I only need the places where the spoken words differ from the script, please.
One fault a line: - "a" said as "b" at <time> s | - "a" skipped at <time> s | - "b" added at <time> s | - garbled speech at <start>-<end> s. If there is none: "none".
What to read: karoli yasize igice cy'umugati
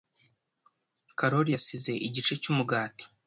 none